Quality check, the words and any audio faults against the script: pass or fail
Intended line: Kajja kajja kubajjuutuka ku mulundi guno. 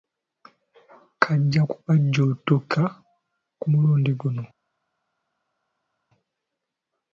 fail